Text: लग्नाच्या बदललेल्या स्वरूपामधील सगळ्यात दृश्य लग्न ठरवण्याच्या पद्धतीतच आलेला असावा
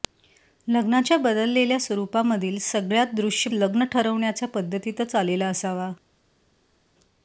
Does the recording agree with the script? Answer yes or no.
yes